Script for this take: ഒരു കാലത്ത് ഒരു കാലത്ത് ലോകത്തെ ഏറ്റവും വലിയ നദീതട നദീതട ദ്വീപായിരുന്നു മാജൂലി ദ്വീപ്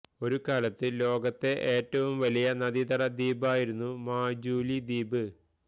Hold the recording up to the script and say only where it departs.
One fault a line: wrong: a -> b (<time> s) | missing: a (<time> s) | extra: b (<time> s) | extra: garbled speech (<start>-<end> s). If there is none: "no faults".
missing: ഒരു കാലത്ത് (0.9 s)
missing: നദീതട (3.0 s)